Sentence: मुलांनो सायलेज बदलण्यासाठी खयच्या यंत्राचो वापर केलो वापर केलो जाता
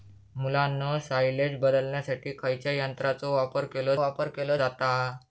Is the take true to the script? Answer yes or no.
yes